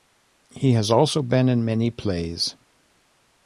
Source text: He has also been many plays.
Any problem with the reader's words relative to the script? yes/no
yes